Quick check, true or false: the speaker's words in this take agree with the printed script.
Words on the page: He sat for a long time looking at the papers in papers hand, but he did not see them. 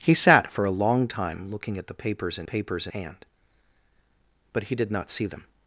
true